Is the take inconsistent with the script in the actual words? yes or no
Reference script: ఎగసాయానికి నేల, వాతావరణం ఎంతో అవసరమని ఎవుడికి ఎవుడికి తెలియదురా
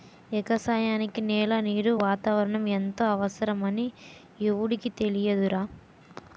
yes